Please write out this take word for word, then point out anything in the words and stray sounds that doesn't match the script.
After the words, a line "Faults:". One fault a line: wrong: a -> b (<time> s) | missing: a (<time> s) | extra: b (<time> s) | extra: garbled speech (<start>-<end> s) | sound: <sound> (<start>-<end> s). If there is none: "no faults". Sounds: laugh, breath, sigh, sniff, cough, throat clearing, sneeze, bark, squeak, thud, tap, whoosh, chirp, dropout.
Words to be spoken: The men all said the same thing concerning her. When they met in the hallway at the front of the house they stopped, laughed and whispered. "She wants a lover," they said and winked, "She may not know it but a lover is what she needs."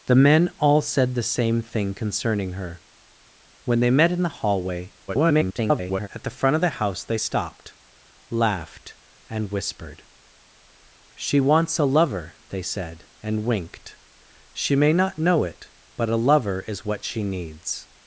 The men all said the same thing concerning her. When they met in the hallway [garbled] at the front of the house they stopped, laughed and whispered. "She wants a lover," they said and winked, "She may not know it but a lover is what she needs."
Faults:
extra: garbled speech (5.1-6.1 s)